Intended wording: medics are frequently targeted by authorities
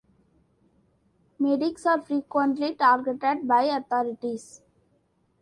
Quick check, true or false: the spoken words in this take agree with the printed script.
true